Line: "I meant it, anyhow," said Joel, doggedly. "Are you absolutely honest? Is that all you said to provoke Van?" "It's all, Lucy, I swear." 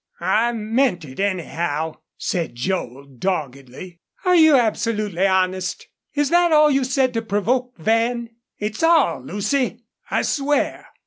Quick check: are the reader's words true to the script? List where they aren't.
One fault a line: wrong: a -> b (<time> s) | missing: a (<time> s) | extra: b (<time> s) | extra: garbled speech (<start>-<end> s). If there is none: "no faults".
no faults